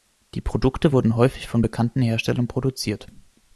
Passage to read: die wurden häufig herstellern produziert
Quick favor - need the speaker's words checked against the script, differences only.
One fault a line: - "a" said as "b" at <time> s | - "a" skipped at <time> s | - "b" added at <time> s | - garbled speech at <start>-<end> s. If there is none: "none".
- "produkte" added at 0.4 s
- "von bekannten" added at 1.5 s